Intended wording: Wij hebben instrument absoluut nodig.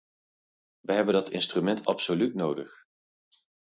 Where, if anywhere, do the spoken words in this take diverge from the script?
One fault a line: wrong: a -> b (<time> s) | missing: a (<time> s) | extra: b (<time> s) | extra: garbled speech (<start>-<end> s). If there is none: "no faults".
extra: dat (1.1 s)